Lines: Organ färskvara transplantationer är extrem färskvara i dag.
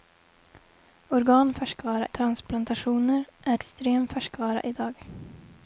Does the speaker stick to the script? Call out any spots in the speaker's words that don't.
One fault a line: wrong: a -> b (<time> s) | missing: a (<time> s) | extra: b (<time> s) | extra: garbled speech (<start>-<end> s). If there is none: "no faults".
no faults